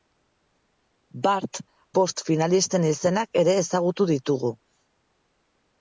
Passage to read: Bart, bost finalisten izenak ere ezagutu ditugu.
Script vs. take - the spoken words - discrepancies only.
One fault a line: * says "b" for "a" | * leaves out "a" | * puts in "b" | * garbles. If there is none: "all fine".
all fine